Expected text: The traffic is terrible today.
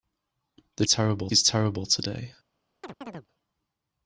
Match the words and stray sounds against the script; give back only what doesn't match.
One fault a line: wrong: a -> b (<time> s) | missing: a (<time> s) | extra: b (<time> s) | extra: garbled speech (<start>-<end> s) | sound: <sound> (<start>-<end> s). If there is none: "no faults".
wrong: traffic -> terrible (0.9 s)
sound: chirp (2.8-3.3 s)